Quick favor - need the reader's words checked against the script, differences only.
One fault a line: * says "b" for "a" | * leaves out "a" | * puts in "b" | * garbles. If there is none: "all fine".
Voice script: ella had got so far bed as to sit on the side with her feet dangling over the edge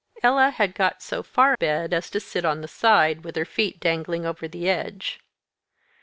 all fine